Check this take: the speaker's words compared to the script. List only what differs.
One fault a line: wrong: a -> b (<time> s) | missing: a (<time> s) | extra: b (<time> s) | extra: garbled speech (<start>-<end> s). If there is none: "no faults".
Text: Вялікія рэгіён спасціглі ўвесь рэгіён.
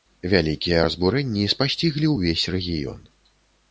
wrong: рэгіён -> разбурэнні (0.8 s)